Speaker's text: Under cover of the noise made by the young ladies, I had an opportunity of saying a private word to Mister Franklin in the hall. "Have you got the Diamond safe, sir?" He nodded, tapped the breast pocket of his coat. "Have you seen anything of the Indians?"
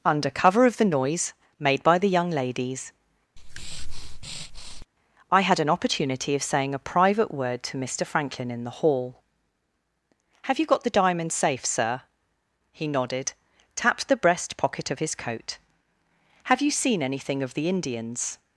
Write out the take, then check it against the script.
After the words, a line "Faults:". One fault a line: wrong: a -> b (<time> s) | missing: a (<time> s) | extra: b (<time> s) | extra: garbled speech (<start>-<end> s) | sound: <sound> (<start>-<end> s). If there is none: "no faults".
Under cover of the noise made by the young ladies, I had an opportunity of saying a private word to Mister Franklin in the hall. "Have you got the Diamond safe, sir?" He nodded, tapped the breast pocket of his coat. "Have you seen anything of the Indians?"
Faults:
sound: breath (3.4-4.9 s)